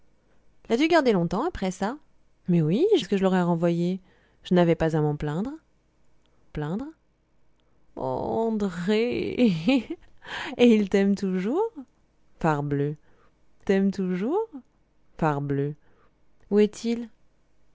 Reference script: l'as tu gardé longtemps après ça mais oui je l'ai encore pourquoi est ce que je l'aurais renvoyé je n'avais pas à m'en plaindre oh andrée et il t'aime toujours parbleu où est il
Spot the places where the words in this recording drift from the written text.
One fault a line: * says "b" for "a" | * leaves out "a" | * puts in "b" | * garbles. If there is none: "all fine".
* leaves out "l'ai encore pourquoi"
* puts in "plaindre"
* puts in "t'aime toujours parbleu"